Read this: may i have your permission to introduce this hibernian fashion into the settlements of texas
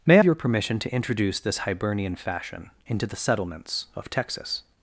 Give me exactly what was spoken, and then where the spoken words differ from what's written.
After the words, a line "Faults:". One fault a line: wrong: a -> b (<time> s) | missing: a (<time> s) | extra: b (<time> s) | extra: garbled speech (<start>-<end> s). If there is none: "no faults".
may your permission to introduce this hibernian fashion into the settlements of texas
Faults:
missing: i have (0.2 s)